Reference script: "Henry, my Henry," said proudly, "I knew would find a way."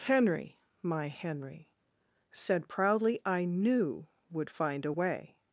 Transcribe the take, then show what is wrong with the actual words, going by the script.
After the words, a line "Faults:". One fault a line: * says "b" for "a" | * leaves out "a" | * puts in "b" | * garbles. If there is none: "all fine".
"Henry, my Henry," said proudly, "I knew would find a way."
Faults:
all fine